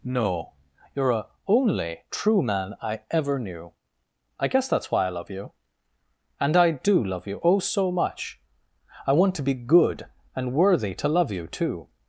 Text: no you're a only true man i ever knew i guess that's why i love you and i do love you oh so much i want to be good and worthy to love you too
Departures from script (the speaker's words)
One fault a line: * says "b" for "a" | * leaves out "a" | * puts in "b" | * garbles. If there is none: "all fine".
all fine